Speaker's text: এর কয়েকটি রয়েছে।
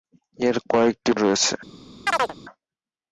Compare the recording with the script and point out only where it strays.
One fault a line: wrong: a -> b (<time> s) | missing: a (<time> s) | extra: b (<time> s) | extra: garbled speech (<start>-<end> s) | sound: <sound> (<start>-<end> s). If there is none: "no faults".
sound: chirp (2.1-2.4 s)